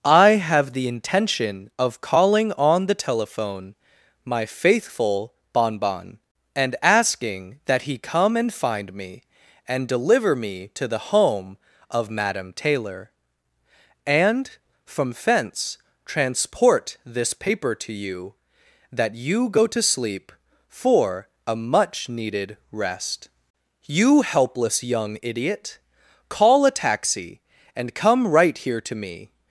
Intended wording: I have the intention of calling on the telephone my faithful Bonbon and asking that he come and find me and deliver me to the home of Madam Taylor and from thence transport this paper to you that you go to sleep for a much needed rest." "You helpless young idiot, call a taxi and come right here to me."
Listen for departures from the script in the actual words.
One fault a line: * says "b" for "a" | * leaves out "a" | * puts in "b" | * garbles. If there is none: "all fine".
all fine